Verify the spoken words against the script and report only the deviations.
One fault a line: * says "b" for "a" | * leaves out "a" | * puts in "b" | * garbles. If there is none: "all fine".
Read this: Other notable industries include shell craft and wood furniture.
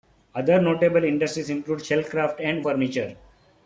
* leaves out "wood"